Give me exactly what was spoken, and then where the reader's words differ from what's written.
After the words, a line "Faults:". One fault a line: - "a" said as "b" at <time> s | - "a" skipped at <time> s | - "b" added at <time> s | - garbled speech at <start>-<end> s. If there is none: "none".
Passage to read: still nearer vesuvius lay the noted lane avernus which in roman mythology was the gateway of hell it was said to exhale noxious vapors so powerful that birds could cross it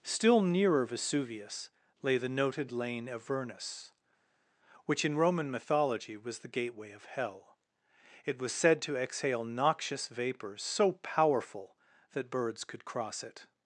still nearer vesuvius lay the noted lane avernus which in roman mythology was the gateway of hell it was said to exhale noxious vapors so powerful that birds could cross it
Faults:
none